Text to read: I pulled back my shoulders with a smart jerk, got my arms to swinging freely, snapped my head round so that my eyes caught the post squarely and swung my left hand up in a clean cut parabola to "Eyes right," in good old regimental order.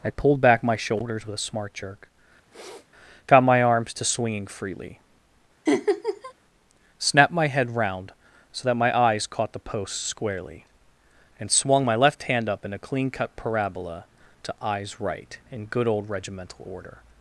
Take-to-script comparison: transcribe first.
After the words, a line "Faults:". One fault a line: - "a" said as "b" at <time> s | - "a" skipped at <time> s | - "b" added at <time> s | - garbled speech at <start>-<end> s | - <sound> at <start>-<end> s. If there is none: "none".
I pulled back my shoulders with a smart jerk, got my arms to swinging freely, snapped my head round so that my eyes caught the post squarely and swung my left hand up in a clean cut parabola to "Eyes right," in good old regimental order.
Faults:
- sniff at 2.5-2.9 s
- laugh at 5.7-6.3 s